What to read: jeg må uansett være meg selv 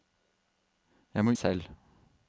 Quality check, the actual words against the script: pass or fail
fail